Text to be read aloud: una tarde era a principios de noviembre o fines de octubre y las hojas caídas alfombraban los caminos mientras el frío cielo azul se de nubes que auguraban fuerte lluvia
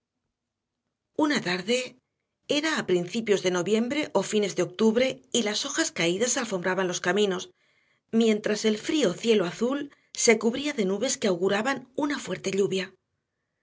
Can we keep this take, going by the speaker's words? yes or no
no